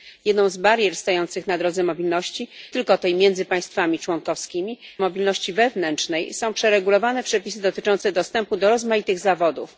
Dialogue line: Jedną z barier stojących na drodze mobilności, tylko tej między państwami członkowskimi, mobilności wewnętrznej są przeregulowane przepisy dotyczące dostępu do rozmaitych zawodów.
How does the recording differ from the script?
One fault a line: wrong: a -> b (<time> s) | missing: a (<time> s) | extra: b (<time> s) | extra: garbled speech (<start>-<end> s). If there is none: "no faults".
no faults